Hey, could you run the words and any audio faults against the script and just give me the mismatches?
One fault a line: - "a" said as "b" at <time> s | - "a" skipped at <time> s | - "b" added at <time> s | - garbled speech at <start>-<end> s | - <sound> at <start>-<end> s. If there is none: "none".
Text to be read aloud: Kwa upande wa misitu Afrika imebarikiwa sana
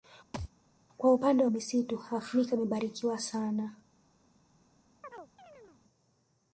- thud at 0.3-0.5 s
- chirp at 5.0-5.8 s